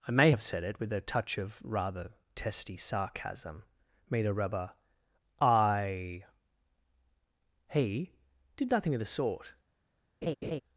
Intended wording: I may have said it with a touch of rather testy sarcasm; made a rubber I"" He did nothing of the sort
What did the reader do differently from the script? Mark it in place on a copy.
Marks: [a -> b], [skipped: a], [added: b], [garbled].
I may have said it with a touch of rather testy sarcasm; made a rubber I"" He did nothing of the sort